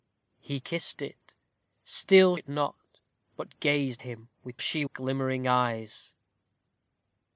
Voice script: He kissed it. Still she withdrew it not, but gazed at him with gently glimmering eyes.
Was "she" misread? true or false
true